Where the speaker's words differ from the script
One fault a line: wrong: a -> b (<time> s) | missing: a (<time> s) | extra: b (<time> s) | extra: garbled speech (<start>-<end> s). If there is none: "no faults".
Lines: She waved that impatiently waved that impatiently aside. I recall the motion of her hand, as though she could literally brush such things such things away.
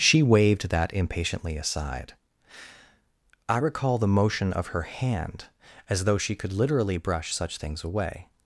missing: waved that impatiently (1.6 s)
missing: such things (7.8 s)